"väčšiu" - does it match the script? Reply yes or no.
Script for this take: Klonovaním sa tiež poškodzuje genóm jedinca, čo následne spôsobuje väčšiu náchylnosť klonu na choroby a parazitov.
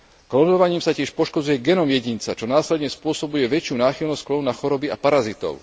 yes